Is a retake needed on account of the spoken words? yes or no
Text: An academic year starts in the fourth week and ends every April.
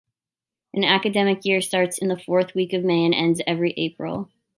yes